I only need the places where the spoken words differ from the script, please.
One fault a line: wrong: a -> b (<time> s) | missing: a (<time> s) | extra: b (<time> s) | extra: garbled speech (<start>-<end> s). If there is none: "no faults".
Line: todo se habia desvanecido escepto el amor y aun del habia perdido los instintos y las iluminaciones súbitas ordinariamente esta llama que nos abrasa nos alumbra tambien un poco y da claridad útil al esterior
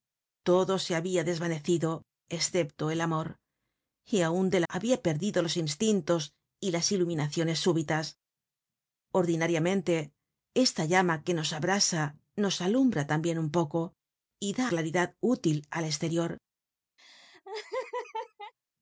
no faults